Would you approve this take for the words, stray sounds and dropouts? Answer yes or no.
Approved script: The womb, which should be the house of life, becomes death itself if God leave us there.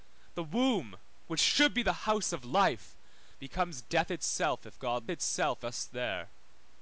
no